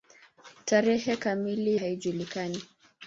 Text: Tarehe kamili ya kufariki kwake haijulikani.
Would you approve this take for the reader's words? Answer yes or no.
no